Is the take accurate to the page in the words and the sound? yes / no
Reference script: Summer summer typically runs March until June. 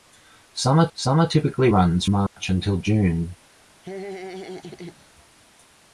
no